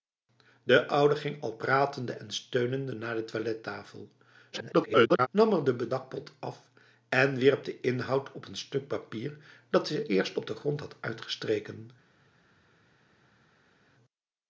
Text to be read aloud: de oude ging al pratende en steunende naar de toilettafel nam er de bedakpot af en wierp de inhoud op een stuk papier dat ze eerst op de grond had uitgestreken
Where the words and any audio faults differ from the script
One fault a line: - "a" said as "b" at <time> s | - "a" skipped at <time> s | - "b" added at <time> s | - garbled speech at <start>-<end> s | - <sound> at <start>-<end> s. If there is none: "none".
- garbled speech at 4.5-5.3 s